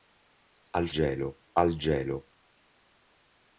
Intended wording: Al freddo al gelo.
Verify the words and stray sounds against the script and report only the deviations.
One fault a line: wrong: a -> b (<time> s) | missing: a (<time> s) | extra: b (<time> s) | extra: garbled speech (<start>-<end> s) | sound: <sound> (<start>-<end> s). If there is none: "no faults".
wrong: freddo -> gelo (0.9 s)